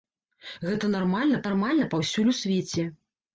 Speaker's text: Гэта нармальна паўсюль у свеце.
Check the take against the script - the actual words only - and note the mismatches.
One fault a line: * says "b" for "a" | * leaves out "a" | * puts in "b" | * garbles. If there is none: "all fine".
* puts in "нармальна"